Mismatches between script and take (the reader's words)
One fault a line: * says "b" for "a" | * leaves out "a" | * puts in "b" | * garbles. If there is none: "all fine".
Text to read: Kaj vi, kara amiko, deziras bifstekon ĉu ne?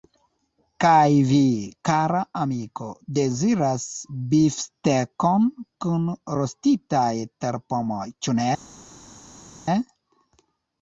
* puts in "kun rostitaj terpomoj"